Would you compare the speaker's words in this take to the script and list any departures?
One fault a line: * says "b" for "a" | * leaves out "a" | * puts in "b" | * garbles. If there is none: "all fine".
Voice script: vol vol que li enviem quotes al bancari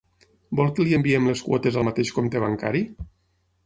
* leaves out "vol"
* puts in "les"
* puts in "mateix compte"